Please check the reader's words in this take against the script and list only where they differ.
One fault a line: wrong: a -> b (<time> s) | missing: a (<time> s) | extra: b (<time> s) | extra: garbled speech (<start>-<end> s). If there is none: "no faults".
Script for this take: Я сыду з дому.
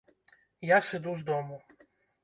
no faults